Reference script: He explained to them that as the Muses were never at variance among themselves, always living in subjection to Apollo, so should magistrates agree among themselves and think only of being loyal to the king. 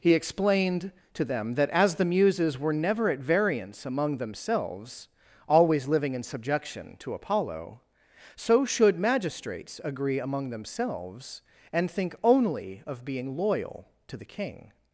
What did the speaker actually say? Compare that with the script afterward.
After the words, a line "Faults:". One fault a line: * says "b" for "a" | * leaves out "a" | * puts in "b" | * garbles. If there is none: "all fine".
He explained to them that as the Muses were never at variance among themselves, always living in subjection to Apollo, so should magistrates agree among themselves and think only of being loyal to the king.
Faults:
all fine